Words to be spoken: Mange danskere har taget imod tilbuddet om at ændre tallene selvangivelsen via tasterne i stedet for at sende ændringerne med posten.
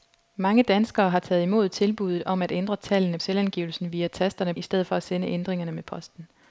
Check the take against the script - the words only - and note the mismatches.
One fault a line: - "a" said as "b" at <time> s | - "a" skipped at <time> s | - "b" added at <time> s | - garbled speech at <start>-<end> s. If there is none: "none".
none